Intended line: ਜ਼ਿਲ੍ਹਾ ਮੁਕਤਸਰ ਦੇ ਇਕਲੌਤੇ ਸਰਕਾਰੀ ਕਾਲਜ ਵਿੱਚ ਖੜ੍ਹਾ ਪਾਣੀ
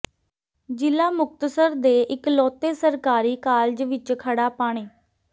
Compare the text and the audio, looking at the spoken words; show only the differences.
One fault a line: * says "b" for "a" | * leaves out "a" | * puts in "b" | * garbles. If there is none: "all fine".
all fine